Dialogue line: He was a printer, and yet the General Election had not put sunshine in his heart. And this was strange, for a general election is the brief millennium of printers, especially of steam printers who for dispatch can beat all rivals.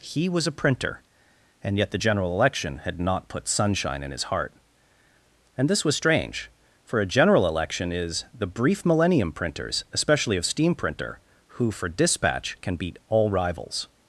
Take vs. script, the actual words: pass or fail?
fail